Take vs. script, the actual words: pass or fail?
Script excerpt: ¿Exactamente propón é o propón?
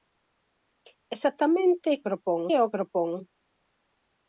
pass